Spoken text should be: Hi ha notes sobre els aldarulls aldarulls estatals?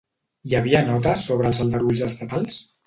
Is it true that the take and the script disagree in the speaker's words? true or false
true